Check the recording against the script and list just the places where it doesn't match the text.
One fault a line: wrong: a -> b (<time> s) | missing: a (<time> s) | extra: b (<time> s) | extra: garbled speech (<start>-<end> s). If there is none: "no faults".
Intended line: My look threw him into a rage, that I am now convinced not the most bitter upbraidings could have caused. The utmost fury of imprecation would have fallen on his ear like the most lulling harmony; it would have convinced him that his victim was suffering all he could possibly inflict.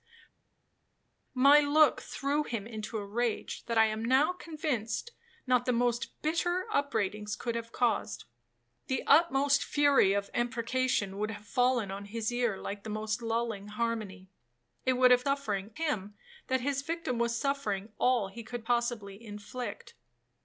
wrong: convinced -> suffering (15.2 s)